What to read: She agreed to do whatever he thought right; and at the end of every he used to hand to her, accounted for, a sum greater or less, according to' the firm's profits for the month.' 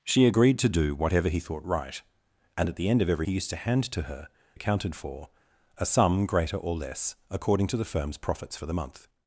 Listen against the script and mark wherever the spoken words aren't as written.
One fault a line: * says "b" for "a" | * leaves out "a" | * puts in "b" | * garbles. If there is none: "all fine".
all fine